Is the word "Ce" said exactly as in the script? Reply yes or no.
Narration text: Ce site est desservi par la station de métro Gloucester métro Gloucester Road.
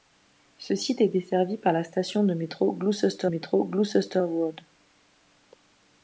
yes